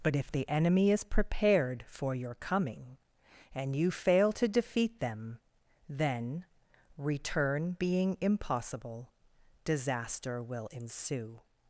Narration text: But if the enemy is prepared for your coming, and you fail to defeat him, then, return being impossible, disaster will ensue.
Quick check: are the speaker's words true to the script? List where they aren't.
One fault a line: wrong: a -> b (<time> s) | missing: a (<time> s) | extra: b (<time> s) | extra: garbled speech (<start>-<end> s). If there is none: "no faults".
wrong: him -> them (5.0 s)